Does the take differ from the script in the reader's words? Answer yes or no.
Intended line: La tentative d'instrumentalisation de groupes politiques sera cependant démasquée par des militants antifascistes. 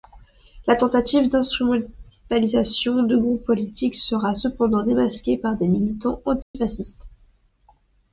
no